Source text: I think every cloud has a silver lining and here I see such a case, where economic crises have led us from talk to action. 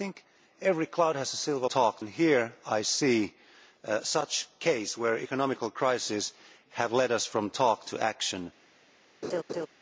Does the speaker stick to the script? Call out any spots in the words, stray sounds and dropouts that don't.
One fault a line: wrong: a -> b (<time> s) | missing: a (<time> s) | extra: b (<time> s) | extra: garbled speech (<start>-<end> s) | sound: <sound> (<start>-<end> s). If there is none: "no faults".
wrong: lining -> talk (1.7 s)
sound: laugh (9.2-9.7 s)